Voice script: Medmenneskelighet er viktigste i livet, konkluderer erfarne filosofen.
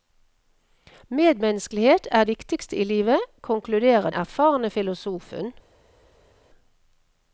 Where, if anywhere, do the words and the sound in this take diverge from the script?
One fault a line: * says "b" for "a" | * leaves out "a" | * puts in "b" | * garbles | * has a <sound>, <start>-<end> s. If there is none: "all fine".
all fine